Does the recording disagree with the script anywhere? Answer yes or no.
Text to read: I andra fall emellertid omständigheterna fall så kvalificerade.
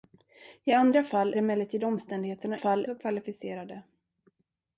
no